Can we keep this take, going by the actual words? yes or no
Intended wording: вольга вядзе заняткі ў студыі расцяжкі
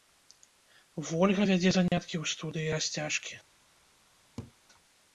yes